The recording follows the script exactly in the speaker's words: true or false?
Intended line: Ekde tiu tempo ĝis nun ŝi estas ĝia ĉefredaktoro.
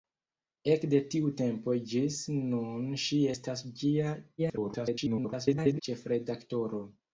false